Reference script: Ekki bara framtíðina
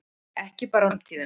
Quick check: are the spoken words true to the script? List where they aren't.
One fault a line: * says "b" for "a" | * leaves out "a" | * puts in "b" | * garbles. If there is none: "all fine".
all fine